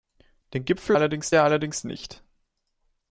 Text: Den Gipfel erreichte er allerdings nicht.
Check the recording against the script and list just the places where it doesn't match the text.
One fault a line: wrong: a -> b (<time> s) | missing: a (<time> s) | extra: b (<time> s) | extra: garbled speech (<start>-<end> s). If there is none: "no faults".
wrong: erreichte -> allerdings (0.9 s)